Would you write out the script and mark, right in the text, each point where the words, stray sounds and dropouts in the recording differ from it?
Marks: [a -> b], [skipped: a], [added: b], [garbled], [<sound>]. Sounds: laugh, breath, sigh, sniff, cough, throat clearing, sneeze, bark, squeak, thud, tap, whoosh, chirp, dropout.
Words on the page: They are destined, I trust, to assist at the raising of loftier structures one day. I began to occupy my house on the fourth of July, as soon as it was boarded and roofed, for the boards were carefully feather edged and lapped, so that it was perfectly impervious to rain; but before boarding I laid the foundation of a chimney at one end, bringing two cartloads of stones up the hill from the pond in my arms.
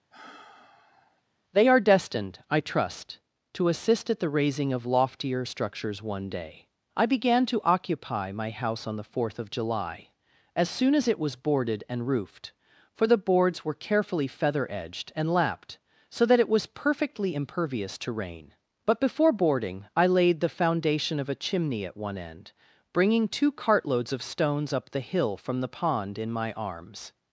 [sigh] They are destined, I trust, to assist at the raising of loftier structures one day. I began to occupy my house on the fourth of July, as soon as it was boarded and roofed, for the boards were carefully feather edged and lapped, so that it was perfectly impervious to rain; but before boarding I laid the foundation of a chimney at one end, bringing two cartloads of stones up the hill from the pond in my arms.